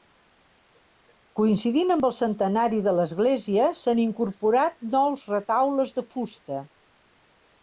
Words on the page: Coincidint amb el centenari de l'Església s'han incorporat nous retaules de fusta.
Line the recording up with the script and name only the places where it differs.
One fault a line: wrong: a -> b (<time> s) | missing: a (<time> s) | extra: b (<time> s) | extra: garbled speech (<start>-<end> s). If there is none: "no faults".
no faults